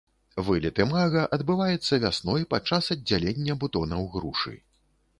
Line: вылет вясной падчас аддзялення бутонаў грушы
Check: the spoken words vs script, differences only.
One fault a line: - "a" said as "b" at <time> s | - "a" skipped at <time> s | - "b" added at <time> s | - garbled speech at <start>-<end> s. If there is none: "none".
- "імага адбываецца" added at 0.8 s